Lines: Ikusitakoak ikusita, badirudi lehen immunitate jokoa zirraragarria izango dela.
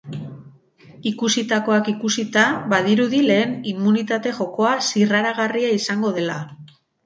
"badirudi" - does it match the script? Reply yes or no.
yes